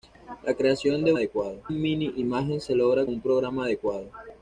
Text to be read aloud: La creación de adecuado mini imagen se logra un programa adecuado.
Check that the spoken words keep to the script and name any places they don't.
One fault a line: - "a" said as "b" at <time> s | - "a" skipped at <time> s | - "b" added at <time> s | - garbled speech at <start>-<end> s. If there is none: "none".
none